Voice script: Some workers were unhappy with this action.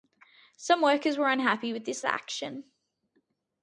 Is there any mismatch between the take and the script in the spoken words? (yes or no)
no